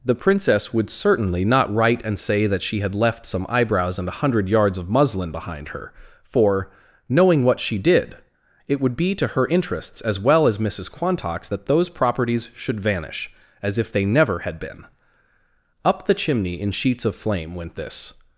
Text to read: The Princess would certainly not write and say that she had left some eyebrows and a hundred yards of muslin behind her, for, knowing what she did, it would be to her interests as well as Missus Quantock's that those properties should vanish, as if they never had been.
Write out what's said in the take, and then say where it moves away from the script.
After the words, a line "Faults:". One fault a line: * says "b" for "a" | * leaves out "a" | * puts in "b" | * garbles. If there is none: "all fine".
The Princess would certainly not write and say that she had left some eyebrows and a hundred yards of muslin behind her, for, knowing what she did, it would be to her interests as well as Missus Quantock's that those properties should vanish, as if they never had been. Up the chimney in sheets of flame went this
Faults:
* puts in "Up the chimney in sheets of flame went this"